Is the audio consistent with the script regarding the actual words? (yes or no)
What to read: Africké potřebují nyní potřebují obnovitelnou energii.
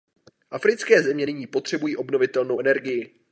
no